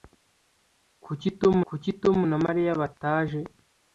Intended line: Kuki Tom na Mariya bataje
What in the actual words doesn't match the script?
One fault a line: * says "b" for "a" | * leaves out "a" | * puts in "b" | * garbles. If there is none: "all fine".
* puts in "kuki Tom"